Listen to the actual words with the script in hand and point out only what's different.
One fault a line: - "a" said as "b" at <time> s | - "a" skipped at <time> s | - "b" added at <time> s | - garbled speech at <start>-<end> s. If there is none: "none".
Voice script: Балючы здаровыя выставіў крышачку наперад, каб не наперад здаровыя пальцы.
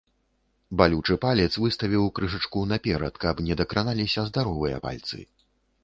- "здаровыя" said as "палец" at 1.2 s
- "наперад" said as "дакраналіся" at 3.6 s